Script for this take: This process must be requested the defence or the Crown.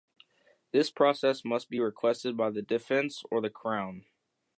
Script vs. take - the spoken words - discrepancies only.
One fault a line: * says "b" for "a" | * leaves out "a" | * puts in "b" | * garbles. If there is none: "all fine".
* puts in "by"